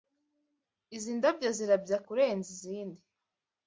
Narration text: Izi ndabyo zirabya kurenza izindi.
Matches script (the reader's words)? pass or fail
pass